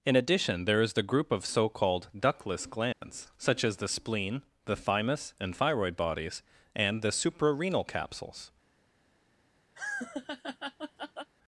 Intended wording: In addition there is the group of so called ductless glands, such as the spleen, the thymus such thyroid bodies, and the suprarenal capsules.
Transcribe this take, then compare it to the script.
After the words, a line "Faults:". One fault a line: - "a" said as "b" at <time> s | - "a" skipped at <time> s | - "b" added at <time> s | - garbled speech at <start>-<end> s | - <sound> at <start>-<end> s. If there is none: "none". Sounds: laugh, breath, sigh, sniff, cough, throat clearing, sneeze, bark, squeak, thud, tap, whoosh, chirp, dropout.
In addition there is the group of so called ductless glands, such as the spleen, the thymus and thyroid bodies, and the suprarenal capsules.
Faults:
- dropout at 2.9-3.0 s
- "such" said as "and" at 5.4 s
- laugh at 9.8-11.3 s